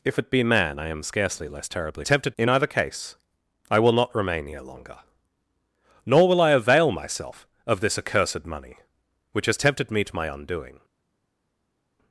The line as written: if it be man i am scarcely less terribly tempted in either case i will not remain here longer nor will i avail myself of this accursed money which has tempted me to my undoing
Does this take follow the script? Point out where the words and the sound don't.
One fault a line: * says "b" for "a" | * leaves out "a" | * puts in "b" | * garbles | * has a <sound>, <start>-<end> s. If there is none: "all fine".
all fine